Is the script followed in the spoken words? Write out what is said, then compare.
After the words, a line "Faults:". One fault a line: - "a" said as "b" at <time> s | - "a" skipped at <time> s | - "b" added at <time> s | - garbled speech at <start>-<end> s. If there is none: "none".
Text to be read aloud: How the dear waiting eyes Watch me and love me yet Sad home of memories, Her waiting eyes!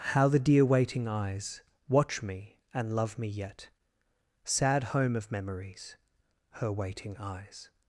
How the dear waiting eyes Watch me and love me yet Sad home of memories, Her waiting eyes!
Faults:
none